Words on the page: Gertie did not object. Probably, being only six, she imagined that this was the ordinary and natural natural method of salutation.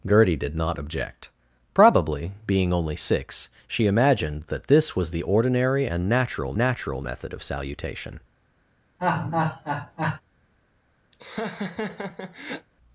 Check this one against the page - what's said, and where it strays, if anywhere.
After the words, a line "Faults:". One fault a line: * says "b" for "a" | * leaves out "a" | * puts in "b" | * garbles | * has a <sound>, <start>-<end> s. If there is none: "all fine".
Gertie did not object. Probably, being only six, she imagined that this was the ordinary and natural natural method of salutation.
Faults:
* has a laugh, 9.0-10.2 s
* has a laugh, 11.1-12.7 s